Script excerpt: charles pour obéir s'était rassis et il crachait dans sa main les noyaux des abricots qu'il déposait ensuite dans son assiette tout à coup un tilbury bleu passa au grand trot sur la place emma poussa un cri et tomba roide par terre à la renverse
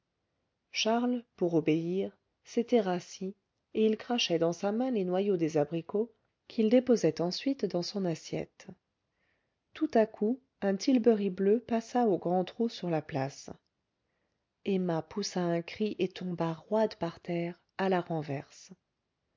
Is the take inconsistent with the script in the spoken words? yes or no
no